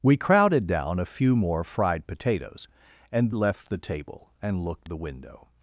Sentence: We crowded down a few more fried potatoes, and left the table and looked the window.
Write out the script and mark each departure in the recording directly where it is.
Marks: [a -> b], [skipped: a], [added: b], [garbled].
We crowded down a few more fried potatoes, and left the table and looked the window.